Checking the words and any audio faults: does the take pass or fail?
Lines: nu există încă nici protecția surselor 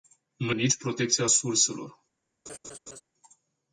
fail